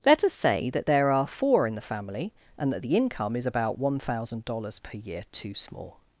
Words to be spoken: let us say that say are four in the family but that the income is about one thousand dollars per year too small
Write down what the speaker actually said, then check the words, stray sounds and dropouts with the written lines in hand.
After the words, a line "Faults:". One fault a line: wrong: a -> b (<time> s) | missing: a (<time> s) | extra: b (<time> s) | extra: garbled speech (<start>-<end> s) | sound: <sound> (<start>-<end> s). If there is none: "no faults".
let us say that there are four in the family and that the income is about one thousand dollars per year too small
Faults:
wrong: say -> there (0.9 s)
wrong: but -> and (2.6 s)